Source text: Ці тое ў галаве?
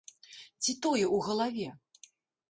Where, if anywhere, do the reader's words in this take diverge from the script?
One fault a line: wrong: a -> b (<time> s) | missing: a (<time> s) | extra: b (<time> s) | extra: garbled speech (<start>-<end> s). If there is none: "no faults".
no faults